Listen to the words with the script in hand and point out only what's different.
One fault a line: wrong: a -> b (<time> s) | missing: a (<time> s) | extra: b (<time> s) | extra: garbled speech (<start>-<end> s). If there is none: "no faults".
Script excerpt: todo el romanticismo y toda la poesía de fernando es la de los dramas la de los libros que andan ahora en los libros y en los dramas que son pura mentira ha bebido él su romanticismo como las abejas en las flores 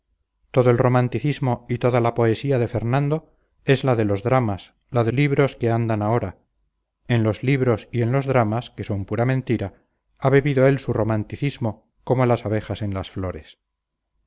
missing: los (5.1 s)